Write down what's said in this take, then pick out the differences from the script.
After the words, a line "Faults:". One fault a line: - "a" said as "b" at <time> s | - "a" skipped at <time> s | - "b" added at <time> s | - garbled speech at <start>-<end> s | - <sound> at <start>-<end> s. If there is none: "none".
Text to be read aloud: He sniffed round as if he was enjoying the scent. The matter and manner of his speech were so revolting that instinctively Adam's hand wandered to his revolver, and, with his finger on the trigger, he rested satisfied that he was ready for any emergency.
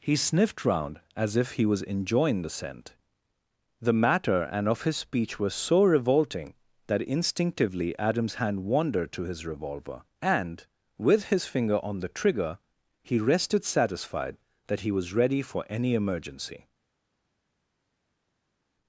He sniffed round as if he was enjoying the scent. The matter and of his speech were so revolting that instinctively Adam's hand wandered to his revolver, and, with his finger on the trigger, he rested satisfied that he was ready for any emergency.
Faults:
- "manner" skipped at 4.7 s